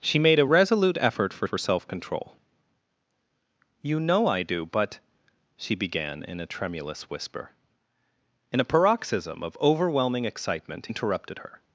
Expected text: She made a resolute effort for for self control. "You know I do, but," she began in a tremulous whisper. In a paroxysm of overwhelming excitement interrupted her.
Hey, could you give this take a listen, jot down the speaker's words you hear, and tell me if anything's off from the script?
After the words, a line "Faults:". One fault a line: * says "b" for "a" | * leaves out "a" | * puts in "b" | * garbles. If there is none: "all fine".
She made a resolute effort for for self control. "You know I do, but," she began in a tremulous whisper. In a paroxysm of overwhelming excitement interrupted her.
Faults:
all fine